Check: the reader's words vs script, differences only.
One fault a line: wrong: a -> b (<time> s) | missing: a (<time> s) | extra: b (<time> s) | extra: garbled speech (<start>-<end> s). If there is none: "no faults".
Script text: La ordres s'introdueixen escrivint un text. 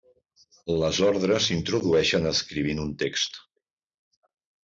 wrong: La -> Les (0.8 s)